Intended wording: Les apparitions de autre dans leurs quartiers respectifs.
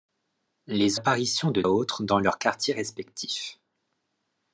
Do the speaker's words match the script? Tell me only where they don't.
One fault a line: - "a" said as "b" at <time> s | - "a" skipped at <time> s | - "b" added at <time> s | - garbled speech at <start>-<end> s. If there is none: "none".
none